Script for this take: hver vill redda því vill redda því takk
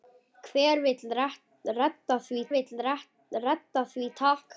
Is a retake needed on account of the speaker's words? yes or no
no